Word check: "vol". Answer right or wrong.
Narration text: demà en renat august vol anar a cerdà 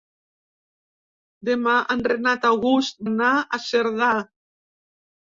wrong